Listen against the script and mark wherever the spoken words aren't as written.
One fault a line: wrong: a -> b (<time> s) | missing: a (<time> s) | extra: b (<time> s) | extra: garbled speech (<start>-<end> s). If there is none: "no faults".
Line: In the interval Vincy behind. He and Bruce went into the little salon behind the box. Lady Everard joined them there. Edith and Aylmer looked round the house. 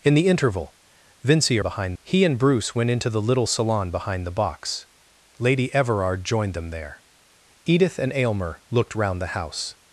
no faults